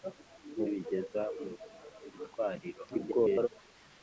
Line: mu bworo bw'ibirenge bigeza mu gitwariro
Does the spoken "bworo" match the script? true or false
false